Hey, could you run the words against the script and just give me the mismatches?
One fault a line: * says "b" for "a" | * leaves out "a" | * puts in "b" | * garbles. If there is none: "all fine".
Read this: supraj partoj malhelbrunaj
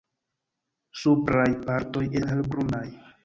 all fine